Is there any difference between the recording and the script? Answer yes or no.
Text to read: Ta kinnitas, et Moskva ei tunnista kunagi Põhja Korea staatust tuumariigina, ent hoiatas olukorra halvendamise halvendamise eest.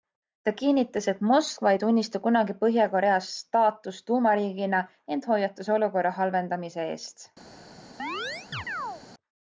yes